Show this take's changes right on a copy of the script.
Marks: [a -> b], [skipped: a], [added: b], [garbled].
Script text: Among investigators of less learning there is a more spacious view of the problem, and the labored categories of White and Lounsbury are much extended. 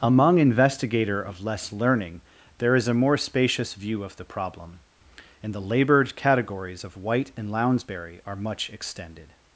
Among [investigators -> investigator] of less learning there is a more spacious view of the problem, and the labored categories of White and Lounsbury are much extended.